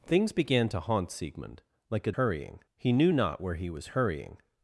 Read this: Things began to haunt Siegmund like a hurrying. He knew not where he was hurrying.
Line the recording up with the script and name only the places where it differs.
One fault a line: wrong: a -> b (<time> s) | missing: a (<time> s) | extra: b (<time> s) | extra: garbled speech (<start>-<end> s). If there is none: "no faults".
no faults